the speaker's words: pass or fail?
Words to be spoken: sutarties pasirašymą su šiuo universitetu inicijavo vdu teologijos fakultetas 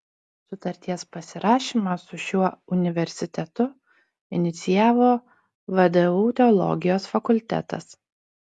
pass